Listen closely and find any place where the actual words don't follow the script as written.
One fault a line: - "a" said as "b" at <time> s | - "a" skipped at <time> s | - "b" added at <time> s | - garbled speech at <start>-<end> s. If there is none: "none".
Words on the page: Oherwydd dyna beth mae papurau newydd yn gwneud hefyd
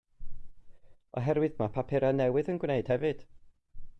- "dyna beth" skipped at 1.6 s